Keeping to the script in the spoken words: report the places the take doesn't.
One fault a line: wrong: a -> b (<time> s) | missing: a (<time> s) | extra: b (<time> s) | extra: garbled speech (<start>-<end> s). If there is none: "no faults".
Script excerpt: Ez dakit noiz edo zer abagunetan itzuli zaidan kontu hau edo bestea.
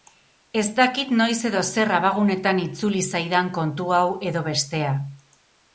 no faults